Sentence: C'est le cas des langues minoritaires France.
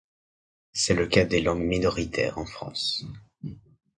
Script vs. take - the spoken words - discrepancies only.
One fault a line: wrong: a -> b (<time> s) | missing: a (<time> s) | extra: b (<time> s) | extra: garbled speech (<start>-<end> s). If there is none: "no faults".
extra: en (2.4 s)